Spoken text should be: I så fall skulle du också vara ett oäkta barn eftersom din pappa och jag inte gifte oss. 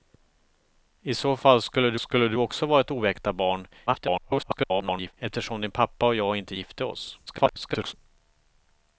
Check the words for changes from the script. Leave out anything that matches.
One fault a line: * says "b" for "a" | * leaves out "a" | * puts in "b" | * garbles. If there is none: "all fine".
* puts in "skulle du"
* garbles
* garbles